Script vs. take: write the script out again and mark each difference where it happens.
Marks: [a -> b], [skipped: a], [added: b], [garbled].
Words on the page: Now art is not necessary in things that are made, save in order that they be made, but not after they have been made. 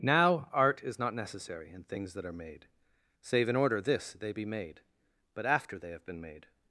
Now art is not necessary in things that are made, save in order [that -> this] they be made, but [skipped: not] after they have been made.